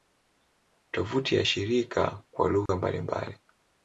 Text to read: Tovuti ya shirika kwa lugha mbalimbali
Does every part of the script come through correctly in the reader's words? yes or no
yes